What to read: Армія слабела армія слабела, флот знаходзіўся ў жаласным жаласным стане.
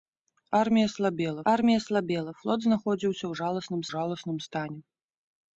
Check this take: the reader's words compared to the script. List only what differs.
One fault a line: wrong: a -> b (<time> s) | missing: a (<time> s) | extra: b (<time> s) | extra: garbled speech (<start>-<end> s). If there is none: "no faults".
no faults